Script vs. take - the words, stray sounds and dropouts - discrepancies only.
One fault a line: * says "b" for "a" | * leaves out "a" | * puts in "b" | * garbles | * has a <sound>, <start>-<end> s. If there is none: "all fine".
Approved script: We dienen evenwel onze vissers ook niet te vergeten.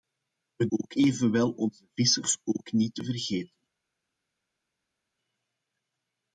* says "ook" for "dienen"